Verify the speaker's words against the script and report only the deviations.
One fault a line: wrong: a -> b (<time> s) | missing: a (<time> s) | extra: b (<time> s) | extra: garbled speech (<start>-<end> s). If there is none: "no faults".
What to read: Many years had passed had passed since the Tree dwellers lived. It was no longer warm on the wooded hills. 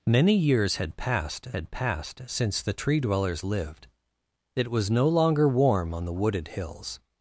no faults